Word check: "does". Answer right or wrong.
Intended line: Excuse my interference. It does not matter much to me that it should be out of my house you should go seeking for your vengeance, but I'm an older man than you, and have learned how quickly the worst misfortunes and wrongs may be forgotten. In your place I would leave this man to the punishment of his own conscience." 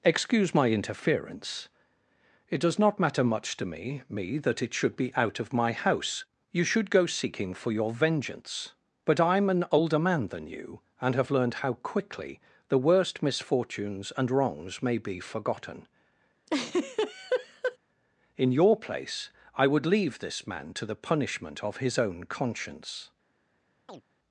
right